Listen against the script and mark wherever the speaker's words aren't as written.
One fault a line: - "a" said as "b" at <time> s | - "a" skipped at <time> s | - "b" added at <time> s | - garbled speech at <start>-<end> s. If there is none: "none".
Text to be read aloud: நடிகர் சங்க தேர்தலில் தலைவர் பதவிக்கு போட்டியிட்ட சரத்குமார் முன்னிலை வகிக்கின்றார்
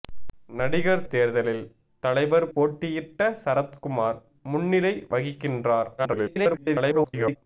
- "சங்க" skipped at 1.0 s
- "பதவிக்கு" skipped at 2.5 s
- garbled speech at 6.0-7.4 s